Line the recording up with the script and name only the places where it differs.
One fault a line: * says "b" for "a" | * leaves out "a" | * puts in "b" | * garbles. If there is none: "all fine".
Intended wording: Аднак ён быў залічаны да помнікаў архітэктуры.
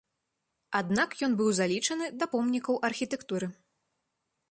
all fine